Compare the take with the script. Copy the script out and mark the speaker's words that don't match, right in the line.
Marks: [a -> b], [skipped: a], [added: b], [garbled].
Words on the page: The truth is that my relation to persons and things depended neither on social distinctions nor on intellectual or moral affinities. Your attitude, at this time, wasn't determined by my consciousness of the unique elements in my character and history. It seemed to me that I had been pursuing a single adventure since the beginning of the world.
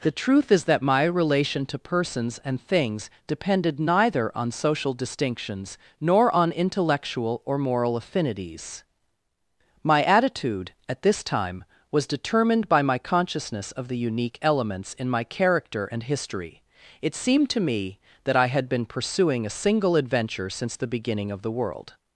The truth is that my relation to persons and things depended neither on social distinctions nor on intellectual or moral affinities. [Your -> My] attitude, at this time, [wasn't -> was] determined by my consciousness of the unique elements in my character and history. It seemed to me that I had been pursuing a single adventure since the beginning of the world.